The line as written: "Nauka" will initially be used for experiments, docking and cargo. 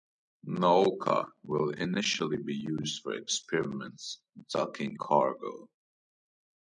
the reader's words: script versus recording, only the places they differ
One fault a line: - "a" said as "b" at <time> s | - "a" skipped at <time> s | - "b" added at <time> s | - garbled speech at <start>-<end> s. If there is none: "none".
- "and" skipped at 5.0 s